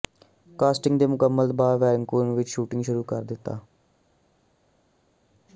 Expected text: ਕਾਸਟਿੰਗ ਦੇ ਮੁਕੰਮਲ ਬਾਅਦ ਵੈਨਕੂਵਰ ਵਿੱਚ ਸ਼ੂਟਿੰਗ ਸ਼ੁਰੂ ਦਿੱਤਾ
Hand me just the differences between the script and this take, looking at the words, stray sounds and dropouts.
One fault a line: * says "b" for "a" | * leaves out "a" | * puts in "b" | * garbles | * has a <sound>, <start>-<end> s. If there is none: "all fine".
* puts in "ਕਰ"